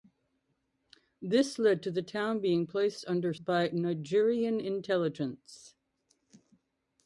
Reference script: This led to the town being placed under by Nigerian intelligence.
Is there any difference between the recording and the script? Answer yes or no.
no